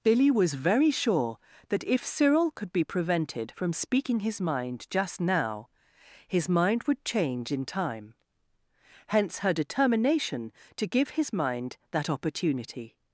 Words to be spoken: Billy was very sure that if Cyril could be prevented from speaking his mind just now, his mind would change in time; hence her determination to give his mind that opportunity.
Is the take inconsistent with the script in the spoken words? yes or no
no